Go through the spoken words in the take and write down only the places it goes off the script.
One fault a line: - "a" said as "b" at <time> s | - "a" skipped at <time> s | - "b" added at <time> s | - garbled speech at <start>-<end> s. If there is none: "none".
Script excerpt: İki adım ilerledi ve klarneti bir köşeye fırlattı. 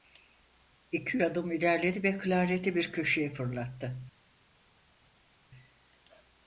none